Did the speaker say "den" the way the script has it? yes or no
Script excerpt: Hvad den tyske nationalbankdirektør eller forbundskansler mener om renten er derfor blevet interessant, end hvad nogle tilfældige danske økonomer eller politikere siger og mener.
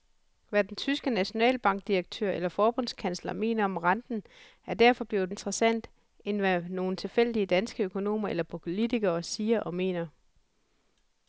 yes